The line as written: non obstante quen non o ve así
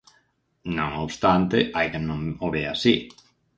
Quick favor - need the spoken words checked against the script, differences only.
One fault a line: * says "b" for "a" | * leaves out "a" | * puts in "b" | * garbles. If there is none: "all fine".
* puts in "hai"